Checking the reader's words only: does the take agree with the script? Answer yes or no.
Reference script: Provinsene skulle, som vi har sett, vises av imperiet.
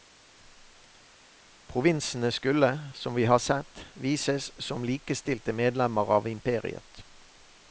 no